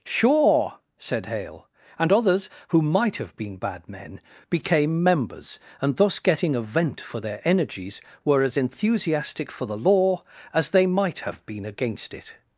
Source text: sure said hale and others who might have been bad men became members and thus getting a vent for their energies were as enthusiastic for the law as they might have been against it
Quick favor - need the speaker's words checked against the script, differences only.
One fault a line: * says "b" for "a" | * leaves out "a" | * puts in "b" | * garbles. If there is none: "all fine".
all fine